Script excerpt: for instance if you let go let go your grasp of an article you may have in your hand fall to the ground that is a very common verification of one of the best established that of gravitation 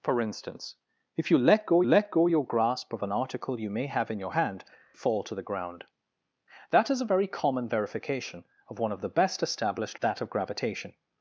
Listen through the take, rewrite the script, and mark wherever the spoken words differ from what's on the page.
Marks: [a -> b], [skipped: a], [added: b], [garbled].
for instance if you let go let go your grasp of an article you may have in your hand fall to the ground that is a very common verification of one of the best established that of gravitation